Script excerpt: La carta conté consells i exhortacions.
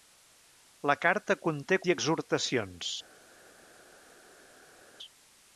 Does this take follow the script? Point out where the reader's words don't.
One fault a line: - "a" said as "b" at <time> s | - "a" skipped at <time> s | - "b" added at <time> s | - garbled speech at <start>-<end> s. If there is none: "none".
- "consells" skipped at 1.8 s